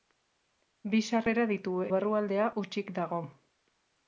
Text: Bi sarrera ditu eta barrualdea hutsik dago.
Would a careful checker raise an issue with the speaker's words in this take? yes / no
yes